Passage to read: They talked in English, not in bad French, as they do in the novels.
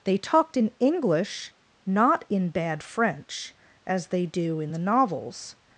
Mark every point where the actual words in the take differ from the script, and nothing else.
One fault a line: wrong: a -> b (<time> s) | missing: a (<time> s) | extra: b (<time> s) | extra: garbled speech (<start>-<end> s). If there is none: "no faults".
no faults